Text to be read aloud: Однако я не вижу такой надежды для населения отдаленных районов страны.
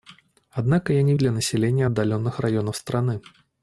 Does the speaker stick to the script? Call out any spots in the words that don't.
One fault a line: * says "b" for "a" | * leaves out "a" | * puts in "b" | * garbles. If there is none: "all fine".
* leaves out "вижу такой надежды"